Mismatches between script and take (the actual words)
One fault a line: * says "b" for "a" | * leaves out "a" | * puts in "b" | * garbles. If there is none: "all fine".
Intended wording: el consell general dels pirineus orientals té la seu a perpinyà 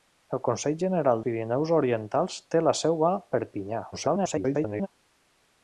* leaves out "dels"
* garbles